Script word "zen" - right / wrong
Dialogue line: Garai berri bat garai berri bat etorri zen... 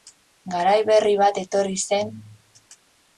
right